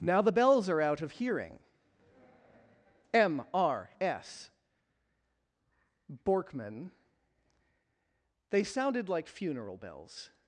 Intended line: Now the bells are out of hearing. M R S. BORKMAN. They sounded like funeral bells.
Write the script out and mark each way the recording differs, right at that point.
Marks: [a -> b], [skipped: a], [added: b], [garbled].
Now the bells are out of hearing. M R S. BORKMAN. They sounded like funeral bells.